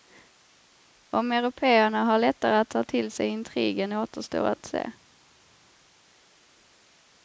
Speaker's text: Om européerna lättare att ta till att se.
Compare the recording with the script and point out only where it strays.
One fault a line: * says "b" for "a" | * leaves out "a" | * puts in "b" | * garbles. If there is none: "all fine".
* puts in "har"
* puts in "sig intrigen återstår"